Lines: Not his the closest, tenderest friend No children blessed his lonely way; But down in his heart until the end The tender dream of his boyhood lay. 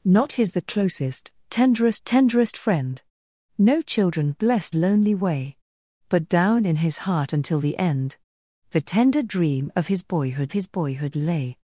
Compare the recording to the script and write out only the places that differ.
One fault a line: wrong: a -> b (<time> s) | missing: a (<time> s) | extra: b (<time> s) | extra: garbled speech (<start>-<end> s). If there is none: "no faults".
extra: tenderest (2.0 s)
missing: his (4.8 s)
extra: his boyhood (10.5 s)